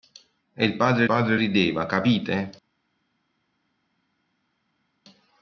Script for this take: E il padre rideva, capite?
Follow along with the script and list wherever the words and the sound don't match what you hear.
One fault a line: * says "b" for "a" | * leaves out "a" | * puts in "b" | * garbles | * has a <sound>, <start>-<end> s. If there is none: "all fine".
* puts in "padre"